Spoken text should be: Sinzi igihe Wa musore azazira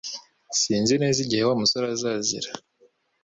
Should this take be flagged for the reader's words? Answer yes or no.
yes